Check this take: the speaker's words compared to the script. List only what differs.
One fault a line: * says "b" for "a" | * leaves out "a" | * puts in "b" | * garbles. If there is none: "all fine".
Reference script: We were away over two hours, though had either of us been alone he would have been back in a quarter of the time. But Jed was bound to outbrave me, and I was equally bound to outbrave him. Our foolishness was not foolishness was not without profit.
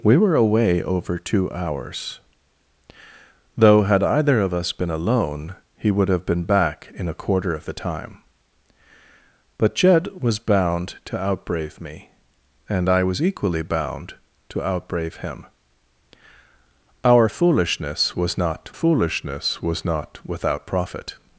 all fine